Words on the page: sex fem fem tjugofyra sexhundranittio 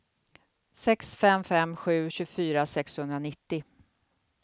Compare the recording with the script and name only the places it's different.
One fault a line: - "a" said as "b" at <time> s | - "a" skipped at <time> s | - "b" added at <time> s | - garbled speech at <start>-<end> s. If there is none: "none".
- "sju" added at 1.7 s